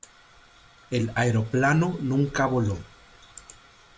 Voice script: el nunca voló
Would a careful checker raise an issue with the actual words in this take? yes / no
yes